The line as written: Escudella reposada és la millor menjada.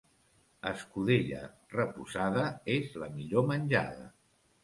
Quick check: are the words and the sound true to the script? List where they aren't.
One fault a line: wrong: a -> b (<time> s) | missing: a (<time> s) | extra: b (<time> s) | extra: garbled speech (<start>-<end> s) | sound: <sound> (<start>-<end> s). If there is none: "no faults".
no faults